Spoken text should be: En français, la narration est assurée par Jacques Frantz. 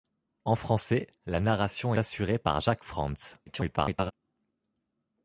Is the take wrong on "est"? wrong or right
wrong